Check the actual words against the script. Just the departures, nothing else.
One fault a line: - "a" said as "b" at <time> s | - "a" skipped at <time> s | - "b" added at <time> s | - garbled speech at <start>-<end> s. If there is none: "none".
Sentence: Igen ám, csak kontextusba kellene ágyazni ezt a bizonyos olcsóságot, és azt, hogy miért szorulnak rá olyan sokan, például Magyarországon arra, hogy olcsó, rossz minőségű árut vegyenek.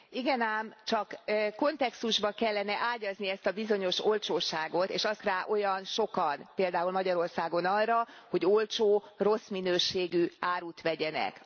- "hogy miért szorulnak" skipped at 5.2 s